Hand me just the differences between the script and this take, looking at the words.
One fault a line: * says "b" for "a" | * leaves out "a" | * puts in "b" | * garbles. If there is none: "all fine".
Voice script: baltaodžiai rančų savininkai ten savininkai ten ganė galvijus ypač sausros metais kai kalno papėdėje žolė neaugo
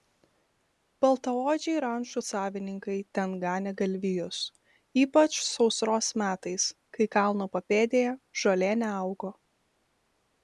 * leaves out "savininkai ten"